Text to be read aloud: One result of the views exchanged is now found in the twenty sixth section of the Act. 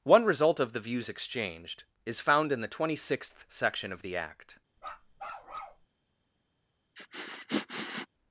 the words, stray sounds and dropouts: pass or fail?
fail